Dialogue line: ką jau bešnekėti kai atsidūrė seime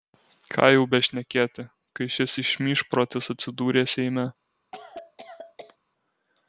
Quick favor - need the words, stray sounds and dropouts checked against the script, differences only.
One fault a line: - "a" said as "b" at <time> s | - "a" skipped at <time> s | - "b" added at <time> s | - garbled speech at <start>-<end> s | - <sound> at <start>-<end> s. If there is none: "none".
- "šis išmyžprotis" added at 2.2 s
- cough at 4.7-5.8 s